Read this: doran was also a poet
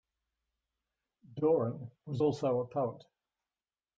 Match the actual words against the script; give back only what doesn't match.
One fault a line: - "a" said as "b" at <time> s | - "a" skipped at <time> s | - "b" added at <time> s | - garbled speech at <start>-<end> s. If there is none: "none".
none